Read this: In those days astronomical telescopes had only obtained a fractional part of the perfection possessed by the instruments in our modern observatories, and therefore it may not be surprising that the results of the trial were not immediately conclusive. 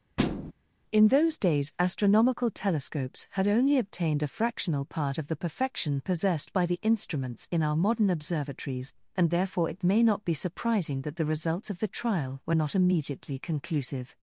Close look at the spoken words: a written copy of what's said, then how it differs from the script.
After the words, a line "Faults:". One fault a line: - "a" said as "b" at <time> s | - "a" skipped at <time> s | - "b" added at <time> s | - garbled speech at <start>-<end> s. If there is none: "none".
In those days astronomical telescopes had only obtained a fractional part of the perfection possessed by the instruments in our modern observatories, and therefore it may not be surprising that the results of the trial were not immediately conclusive.
Faults:
none